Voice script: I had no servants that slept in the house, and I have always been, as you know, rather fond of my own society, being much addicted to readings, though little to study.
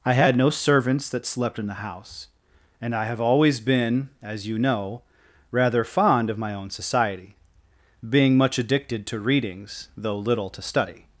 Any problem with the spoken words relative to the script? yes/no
no